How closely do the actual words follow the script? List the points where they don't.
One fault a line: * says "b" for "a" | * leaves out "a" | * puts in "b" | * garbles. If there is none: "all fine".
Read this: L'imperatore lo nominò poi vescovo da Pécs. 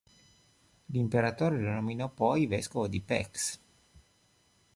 * says "di" for "da"